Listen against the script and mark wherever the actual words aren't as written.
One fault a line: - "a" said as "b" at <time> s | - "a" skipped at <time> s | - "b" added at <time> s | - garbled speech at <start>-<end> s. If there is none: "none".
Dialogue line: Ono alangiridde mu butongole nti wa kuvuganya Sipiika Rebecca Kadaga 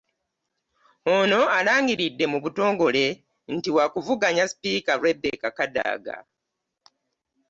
none